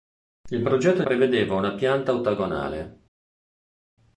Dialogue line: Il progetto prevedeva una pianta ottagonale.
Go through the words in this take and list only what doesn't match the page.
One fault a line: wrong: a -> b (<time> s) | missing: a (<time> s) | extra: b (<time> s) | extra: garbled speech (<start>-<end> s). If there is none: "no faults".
no faults